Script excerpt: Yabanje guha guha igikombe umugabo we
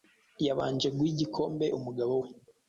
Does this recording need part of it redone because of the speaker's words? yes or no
yes